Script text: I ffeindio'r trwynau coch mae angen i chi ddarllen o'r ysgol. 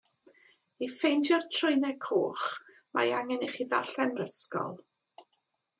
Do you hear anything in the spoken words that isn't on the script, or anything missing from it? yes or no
no